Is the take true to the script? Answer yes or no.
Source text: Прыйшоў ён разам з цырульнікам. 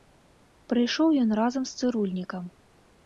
yes